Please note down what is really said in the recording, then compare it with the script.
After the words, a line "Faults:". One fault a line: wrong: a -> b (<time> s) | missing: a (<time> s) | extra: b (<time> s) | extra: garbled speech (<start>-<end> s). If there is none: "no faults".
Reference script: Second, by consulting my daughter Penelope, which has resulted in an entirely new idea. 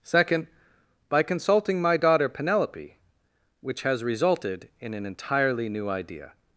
Second, by consulting my daughter Penelope, which has resulted in an entirely new idea.
Faults:
no faults